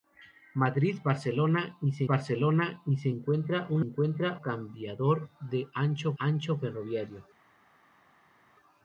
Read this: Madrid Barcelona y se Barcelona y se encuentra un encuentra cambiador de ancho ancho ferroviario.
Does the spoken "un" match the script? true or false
true